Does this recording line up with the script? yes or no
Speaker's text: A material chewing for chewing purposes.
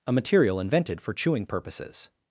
no